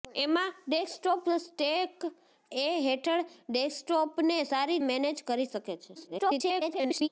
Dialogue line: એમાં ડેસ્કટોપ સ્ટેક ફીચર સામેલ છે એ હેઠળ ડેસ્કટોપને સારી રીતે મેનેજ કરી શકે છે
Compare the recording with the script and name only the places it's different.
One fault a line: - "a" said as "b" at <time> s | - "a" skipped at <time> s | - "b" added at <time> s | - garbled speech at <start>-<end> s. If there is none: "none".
- "ફીચર સામેલ છે" skipped at 2.0 s
- "રીતે" skipped at 4.8 s
- garbled speech at 5.9-7.1 s